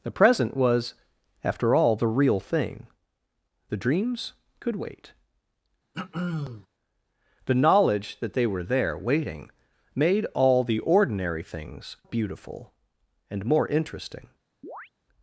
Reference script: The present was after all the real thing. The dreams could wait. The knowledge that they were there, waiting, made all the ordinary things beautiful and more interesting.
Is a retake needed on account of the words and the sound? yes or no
yes